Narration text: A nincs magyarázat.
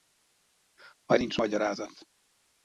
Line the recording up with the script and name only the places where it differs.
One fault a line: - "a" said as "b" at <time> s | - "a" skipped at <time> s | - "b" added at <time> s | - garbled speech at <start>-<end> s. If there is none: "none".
none